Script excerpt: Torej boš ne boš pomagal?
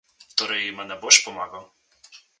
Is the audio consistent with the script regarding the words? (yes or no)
no